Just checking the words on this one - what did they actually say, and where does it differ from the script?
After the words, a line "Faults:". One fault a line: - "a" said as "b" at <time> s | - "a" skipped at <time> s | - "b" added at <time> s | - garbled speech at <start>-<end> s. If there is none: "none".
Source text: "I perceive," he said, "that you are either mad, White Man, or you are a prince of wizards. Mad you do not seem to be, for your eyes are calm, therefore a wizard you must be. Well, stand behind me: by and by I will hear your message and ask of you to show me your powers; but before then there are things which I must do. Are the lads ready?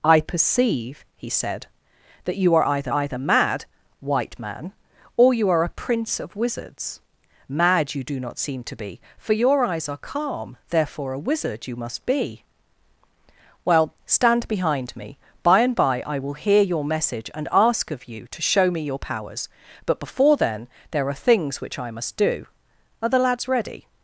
"I perceive," he said, "that you are either either mad, White Man, or you are a prince of wizards. Mad you do not seem to be, for your eyes are calm, therefore a wizard you must be. Well, stand behind me: by and by I will hear your message and ask of you to show me your powers; but before then there are things which I must do. Are the lads ready?
Faults:
- "either" added at 2.9 s